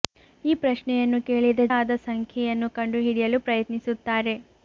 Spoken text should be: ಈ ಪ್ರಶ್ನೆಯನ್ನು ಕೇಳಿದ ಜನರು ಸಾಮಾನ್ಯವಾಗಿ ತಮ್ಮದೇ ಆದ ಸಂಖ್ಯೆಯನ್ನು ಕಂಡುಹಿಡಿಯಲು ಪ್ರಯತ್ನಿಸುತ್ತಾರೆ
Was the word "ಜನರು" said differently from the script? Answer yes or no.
yes